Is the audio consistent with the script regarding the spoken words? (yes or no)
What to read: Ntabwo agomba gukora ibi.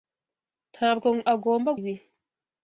no